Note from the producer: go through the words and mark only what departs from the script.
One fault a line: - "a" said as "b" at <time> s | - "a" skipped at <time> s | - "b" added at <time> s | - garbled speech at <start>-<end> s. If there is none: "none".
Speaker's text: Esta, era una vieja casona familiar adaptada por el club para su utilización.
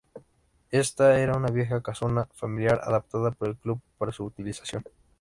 none